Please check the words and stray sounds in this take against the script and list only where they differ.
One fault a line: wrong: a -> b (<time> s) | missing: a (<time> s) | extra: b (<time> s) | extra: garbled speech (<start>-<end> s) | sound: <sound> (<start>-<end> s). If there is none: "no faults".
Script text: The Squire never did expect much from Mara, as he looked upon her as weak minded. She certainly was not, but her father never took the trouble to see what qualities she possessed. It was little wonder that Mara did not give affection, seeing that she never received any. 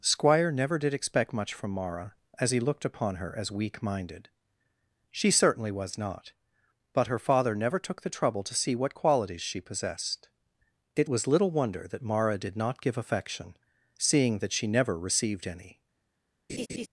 missing: The (0.0 s)
sound: laugh (16.5-16.9 s)